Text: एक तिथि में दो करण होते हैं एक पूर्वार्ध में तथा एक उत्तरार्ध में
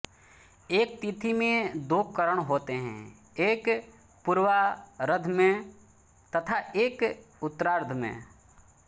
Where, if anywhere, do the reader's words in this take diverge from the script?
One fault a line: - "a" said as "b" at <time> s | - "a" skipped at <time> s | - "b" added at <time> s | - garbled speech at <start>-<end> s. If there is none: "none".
none